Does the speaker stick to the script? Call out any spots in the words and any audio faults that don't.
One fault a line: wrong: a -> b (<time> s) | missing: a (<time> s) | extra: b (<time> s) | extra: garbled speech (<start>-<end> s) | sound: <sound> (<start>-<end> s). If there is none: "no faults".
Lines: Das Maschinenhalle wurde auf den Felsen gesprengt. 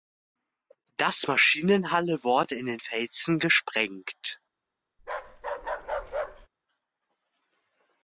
wrong: auf -> in (2.5 s)
sound: bark (5.0-6.5 s)